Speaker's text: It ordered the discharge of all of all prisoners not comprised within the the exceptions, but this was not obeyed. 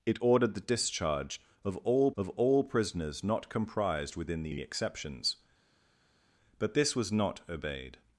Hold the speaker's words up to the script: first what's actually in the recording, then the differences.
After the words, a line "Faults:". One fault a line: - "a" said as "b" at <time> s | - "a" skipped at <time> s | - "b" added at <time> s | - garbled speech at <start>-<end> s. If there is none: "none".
It ordered the discharge of all of all prisoners not comprised within the the exceptions, but this was not obeyed.
Faults:
none